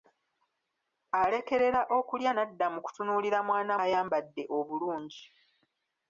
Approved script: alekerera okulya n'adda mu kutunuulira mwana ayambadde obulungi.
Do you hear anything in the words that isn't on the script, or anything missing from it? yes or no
no